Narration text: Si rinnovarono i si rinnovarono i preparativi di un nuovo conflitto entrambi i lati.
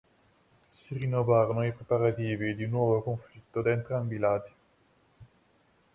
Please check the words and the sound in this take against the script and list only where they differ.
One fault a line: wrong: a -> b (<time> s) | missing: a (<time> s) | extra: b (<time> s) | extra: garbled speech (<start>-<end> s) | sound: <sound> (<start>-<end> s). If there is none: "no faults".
missing: si rinnovarono i (1.7 s)
extra: da (3.6 s)